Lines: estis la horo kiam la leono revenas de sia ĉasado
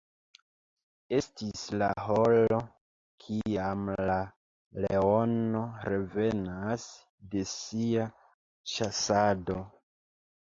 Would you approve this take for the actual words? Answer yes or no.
yes